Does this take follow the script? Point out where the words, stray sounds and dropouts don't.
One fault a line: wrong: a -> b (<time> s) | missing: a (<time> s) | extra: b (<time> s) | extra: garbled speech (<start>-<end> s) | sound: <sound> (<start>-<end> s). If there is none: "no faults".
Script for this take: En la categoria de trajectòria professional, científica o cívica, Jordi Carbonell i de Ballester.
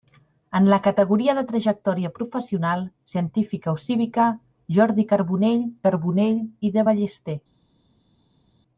extra: Carbonell (5.9 s)